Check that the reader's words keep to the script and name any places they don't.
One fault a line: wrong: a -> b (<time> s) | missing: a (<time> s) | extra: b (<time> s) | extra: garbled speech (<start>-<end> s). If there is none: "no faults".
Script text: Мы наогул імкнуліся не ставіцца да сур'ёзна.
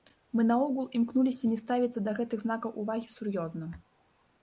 extra: гэтых знакаў увагі (2.2 s)